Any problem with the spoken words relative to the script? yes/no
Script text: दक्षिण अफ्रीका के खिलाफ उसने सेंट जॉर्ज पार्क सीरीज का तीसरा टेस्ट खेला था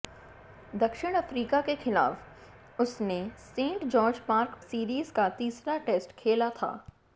no